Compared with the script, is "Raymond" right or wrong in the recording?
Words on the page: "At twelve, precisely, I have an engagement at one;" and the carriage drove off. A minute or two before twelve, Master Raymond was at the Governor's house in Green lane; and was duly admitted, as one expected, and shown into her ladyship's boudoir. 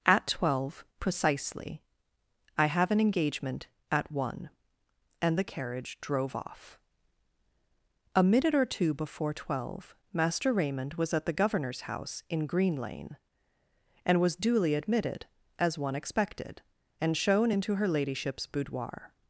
right